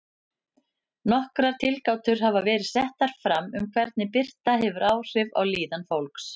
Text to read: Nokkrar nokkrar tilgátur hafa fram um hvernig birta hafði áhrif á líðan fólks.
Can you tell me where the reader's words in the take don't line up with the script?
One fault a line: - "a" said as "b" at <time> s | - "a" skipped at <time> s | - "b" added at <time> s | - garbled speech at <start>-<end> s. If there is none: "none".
- "nokkrar" skipped at 1.6 s
- "verið settar" added at 2.5 s
- "hafði" said as "hefur" at 4.7 s